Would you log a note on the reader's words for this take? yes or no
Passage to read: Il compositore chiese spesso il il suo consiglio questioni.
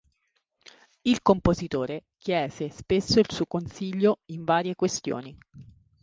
yes